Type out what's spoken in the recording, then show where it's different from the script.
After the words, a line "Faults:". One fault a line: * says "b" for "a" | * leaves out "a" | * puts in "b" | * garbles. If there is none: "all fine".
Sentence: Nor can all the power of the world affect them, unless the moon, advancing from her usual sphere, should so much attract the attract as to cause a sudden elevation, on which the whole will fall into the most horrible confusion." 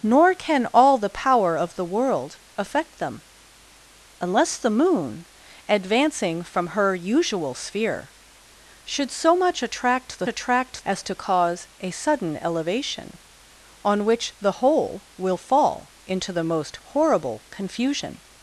Nor can all the power of the world affect them, unless the moon, advancing from her usual sphere, should so much attract the attract as to cause a sudden elevation, on which the whole will fall into the most horrible confusion."
Faults:
all fine